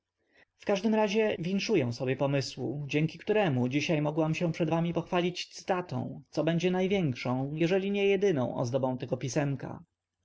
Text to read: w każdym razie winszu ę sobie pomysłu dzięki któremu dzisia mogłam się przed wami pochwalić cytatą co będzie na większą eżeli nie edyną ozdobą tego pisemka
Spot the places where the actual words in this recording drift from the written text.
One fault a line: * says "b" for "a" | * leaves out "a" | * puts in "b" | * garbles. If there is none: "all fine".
all fine